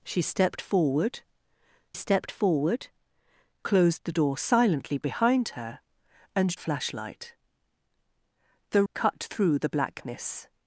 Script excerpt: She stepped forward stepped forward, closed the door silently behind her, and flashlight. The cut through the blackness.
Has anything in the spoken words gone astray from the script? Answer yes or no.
no